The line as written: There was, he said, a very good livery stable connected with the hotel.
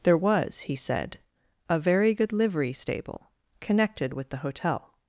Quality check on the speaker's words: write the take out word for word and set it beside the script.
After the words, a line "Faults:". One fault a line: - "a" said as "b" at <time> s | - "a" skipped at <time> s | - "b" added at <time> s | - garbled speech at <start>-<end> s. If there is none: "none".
There was, he said, a very good livery stable connected with the hotel.
Faults:
none